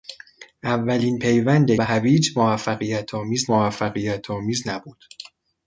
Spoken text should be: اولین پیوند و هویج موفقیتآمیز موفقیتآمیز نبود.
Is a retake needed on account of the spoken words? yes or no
no